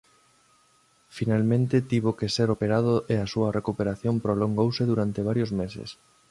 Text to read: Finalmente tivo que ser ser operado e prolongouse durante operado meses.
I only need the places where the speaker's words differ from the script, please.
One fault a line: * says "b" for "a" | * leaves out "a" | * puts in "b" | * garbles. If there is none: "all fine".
* leaves out "ser"
* puts in "a súa recuperación"
* says "varios" for "operado"